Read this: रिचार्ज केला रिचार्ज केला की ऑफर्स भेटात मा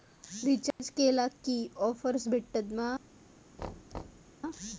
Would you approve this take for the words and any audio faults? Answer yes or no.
no